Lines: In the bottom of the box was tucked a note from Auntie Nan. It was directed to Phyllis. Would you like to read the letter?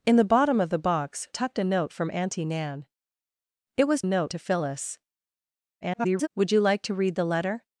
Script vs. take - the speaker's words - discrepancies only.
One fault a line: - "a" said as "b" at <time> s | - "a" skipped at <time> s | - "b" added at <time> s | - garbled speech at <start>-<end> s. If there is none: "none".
- "was" skipped at 1.3 s
- "directed" said as "note" at 4.0 s
- garbled speech at 5.8-6.3 s